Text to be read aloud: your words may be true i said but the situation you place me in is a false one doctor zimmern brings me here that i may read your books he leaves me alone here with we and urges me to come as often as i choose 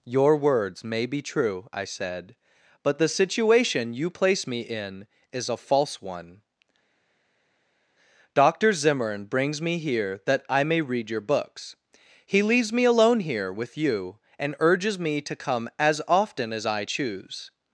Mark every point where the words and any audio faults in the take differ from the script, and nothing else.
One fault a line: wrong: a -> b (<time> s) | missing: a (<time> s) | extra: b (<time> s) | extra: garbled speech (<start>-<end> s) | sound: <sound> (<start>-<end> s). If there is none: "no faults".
wrong: we -> you (13.8 s)